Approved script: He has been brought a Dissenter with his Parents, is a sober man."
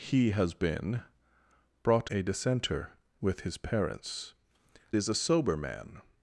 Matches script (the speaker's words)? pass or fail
pass